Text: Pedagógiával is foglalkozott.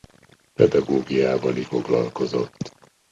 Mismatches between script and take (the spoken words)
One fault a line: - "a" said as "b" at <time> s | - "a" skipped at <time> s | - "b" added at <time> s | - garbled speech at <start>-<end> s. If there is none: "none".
none